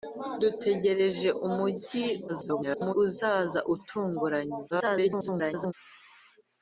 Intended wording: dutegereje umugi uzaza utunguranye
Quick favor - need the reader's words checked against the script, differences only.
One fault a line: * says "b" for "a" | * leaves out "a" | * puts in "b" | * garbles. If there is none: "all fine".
* garbles
* garbles